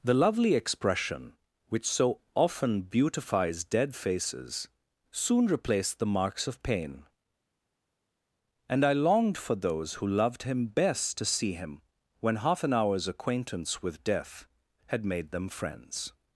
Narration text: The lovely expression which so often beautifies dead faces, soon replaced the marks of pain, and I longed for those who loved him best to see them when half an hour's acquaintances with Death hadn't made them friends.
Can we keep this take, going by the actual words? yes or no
no